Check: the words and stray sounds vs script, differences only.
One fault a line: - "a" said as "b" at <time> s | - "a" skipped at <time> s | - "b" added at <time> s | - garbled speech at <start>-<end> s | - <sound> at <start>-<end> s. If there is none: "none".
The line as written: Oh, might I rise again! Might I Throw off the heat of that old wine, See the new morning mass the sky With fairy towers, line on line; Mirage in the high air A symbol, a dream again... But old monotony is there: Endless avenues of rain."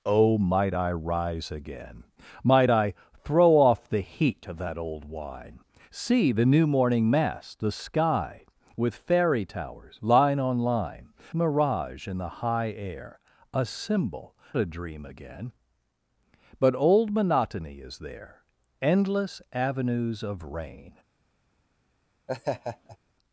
- laugh at 22.3-23.0 s